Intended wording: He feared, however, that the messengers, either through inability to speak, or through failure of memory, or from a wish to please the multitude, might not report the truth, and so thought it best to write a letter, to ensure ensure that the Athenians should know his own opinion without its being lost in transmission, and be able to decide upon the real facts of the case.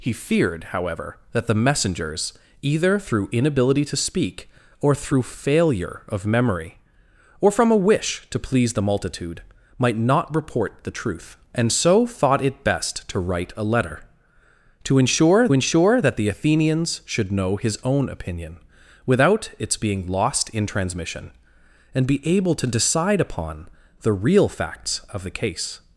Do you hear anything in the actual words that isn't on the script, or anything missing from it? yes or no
no